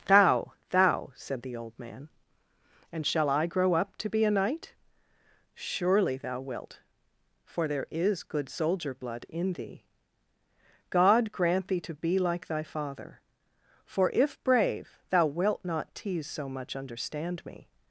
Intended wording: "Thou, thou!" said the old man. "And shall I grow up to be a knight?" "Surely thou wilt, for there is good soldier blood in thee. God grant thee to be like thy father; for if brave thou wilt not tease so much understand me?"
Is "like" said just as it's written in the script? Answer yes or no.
yes